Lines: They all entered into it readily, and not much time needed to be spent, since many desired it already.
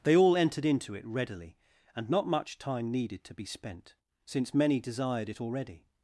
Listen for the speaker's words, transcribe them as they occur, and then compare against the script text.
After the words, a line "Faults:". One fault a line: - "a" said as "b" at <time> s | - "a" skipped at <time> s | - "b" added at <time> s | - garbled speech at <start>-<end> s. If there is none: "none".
They all entered into it readily, and not much time needed to be spent, since many desired it already.
Faults:
none